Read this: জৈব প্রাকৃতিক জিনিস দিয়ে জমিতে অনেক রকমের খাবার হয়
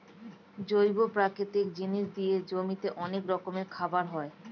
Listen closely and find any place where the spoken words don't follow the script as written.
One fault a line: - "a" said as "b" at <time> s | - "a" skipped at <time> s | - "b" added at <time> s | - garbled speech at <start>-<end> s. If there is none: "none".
none